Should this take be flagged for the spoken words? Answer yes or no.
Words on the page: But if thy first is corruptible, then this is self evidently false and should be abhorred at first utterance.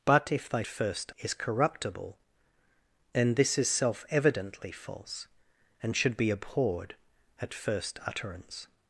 no